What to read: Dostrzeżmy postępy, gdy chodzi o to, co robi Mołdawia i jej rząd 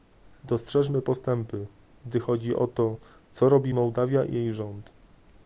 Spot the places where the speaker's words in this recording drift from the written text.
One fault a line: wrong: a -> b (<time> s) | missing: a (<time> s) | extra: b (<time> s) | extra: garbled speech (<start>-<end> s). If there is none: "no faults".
no faults